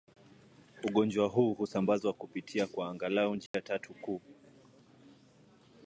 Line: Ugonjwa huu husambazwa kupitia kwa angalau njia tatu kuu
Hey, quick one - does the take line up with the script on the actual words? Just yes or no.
yes